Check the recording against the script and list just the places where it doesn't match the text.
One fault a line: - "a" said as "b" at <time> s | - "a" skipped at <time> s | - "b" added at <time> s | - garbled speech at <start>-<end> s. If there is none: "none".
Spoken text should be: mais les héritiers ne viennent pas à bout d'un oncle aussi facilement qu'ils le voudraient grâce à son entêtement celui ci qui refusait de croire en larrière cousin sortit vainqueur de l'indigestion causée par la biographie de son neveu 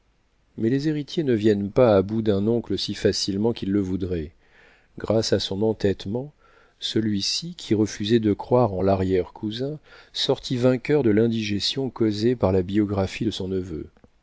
none